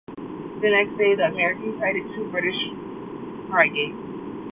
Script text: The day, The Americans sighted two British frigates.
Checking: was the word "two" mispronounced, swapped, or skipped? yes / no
no